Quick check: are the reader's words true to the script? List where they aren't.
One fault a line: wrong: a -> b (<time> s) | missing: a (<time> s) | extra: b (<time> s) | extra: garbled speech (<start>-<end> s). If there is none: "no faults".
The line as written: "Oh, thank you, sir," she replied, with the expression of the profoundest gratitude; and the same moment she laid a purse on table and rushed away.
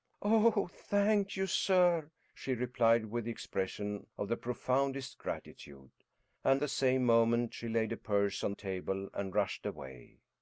no faults